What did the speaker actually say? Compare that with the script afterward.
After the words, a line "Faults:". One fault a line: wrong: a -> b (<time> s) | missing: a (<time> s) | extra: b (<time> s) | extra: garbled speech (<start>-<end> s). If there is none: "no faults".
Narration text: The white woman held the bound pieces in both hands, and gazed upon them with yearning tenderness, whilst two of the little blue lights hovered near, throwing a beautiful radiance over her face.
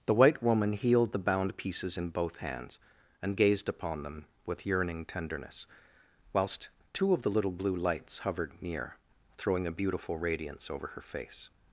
The white woman healed the bound pieces in both hands, and gazed upon them with yearning tenderness, whilst two of the little blue lights hovered near, throwing a beautiful radiance over her face.
Faults:
wrong: held -> healed (0.7 s)